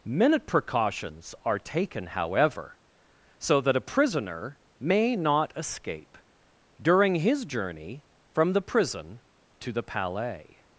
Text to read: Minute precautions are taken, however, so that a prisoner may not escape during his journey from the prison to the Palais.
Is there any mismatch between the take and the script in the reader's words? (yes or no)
no